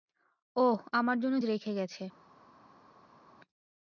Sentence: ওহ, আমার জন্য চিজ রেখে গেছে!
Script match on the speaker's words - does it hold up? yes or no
no